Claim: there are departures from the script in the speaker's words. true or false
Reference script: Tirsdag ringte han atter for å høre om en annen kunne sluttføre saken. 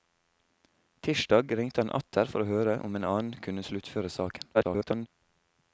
true